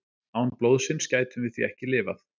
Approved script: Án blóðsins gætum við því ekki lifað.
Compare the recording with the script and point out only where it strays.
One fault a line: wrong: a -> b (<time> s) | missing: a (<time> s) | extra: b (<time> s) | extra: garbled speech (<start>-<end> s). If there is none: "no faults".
no faults